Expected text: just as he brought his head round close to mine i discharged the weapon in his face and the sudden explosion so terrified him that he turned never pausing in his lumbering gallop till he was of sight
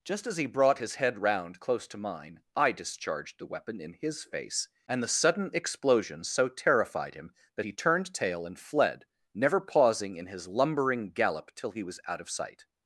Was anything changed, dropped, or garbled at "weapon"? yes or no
no